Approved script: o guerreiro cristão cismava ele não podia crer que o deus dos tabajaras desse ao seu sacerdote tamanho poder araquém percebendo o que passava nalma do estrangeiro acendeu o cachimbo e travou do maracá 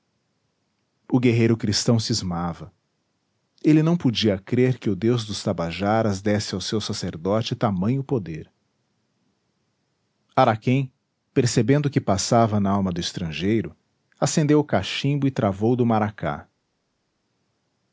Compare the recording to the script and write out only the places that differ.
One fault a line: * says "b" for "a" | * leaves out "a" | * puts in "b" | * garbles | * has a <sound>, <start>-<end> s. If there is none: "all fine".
all fine